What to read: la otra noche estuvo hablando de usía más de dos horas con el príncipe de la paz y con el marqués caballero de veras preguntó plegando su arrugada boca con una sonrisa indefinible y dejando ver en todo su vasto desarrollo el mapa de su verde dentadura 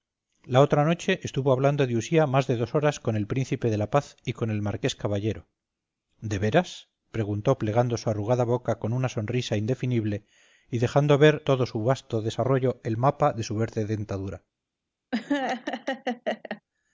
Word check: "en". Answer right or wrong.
wrong